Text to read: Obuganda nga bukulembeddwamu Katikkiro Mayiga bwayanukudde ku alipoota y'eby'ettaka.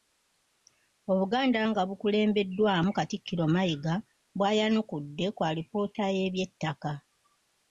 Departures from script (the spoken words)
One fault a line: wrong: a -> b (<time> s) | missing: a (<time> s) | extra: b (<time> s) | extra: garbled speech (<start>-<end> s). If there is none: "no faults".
no faults